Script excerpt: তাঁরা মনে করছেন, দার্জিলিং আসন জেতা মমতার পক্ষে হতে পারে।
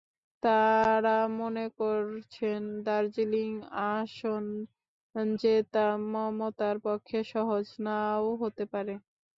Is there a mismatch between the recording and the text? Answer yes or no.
yes